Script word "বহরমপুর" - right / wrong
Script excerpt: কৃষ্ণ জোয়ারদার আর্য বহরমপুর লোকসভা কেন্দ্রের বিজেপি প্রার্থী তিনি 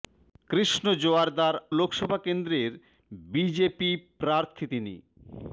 wrong